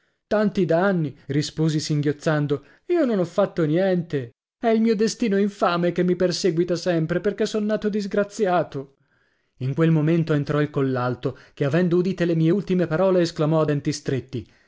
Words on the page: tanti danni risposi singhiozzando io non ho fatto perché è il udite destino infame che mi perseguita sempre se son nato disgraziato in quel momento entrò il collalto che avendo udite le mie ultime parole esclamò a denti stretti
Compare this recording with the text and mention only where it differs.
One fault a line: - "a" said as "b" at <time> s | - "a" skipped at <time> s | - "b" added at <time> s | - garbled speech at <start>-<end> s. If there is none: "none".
- "perché" said as "niente" at 3.6 s
- "udite" said as "mio" at 4.8 s
- "se" said as "perché" at 7.2 s